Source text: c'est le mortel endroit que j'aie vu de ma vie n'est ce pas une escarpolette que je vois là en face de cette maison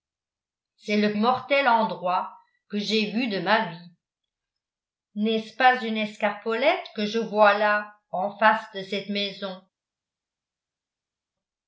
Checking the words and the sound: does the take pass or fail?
pass